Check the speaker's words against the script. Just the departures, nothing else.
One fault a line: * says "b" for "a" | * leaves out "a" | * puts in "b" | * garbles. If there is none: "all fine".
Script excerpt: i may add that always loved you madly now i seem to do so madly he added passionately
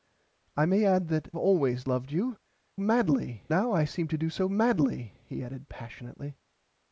all fine